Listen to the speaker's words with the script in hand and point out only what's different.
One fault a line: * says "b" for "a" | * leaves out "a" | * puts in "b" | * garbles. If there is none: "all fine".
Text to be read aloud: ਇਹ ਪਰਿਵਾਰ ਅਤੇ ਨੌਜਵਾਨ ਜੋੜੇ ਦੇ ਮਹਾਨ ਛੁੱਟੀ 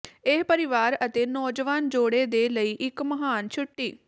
* puts in "ਲਈ ਇੱਕ"